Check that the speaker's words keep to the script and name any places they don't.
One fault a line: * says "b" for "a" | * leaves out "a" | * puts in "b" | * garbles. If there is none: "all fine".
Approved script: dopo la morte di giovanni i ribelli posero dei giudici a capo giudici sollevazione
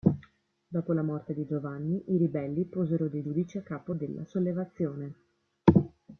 * says "della" for "giudici"